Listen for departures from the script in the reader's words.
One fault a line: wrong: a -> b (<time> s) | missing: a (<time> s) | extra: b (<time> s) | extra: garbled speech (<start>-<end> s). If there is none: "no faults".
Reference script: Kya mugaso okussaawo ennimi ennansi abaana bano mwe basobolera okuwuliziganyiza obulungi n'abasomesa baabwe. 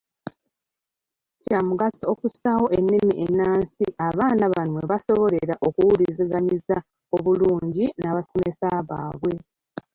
no faults